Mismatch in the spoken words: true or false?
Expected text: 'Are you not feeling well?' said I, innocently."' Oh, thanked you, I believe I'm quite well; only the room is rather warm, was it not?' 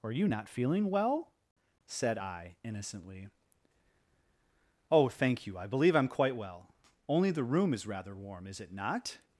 true